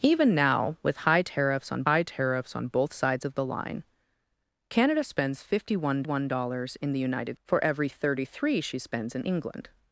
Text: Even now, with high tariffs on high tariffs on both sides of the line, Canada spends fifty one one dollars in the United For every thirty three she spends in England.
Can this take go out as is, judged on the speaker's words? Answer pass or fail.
pass